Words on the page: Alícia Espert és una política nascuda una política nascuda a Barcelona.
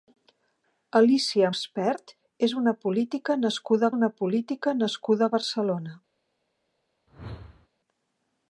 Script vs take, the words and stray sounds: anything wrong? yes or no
yes